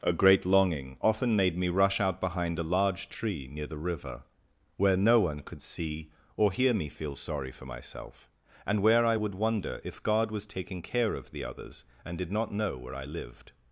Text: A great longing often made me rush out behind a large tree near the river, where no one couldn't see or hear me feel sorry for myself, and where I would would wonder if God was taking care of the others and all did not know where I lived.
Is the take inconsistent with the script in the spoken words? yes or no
yes